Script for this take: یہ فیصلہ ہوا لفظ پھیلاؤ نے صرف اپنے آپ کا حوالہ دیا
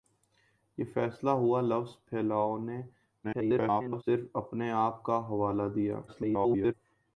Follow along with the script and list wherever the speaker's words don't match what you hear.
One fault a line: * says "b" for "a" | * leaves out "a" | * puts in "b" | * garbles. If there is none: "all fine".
* garbles
* garbles